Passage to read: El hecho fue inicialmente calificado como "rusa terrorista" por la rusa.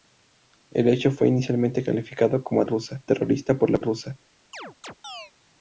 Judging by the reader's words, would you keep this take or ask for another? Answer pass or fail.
pass